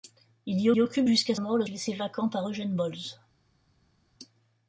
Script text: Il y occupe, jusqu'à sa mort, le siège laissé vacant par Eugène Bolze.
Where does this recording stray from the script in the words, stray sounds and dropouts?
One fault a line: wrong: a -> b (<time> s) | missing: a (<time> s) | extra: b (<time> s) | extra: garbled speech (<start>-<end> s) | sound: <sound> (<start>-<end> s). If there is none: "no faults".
extra: y (0.7 s)
missing: sa (1.4 s)
missing: siège (1.6 s)